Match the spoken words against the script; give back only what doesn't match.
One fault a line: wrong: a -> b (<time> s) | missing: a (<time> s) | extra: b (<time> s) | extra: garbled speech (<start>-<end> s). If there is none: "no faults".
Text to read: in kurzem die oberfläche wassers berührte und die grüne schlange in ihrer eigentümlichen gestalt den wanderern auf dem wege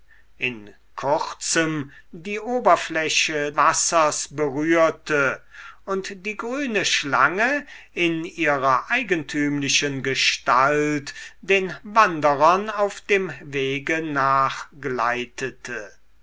no faults